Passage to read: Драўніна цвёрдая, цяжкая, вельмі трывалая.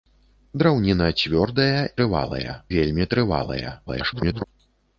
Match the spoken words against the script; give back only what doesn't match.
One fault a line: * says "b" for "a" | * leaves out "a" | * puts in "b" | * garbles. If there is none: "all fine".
* says "трывалая" for "цяжкая"
* garbles